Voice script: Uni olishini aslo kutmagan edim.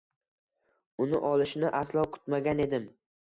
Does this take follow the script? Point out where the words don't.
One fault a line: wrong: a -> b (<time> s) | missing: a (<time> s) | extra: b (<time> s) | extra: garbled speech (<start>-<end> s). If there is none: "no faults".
no faults